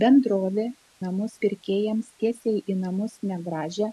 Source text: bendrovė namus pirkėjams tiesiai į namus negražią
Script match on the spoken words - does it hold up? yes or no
yes